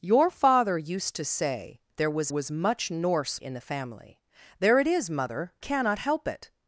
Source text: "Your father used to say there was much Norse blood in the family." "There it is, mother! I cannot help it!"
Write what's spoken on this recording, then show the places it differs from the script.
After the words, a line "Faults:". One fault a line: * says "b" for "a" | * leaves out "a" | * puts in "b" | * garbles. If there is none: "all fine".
"Your father used to say there was was much Norse in the family." "There it is, mother! cannot help it!"
Faults:
* puts in "was"
* leaves out "blood"
* leaves out "I"